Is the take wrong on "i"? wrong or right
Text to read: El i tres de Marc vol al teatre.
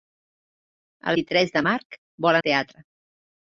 right